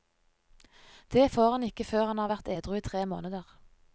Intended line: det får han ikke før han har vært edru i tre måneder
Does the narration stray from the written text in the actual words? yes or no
no